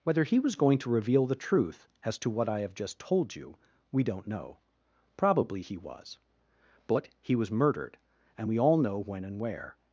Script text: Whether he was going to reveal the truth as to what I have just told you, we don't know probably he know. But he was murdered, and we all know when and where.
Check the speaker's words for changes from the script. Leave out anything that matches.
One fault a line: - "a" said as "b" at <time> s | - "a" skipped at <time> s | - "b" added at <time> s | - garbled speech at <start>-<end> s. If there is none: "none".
- "know" said as "was" at 5.8 s